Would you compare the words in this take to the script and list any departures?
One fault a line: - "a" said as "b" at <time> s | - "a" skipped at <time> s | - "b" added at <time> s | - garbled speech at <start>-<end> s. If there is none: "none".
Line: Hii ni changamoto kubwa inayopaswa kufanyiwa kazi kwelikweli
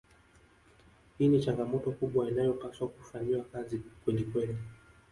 none